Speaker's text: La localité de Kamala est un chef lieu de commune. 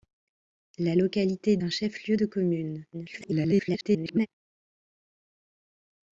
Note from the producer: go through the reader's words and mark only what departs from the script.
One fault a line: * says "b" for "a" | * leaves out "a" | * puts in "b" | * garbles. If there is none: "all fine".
* leaves out "de Kamala est"
* garbles